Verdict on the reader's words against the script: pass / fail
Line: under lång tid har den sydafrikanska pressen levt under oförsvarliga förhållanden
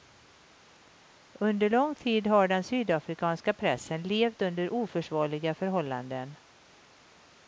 pass